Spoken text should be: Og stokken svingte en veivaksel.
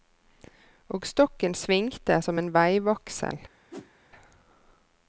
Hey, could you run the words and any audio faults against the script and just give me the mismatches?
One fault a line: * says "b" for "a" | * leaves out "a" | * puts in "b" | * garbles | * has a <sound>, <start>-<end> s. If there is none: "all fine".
* puts in "som"
* has a whoosh, 3.7-3.9 s